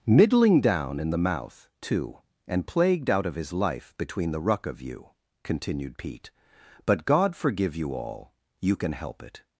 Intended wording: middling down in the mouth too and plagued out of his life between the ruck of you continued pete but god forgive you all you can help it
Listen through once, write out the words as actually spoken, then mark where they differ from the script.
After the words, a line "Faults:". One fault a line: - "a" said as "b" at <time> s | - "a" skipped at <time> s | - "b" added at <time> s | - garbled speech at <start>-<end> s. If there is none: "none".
middling down in the mouth too and plagued out of his life between the ruck of you continued pete but god forgive you all you can help it
Faults:
none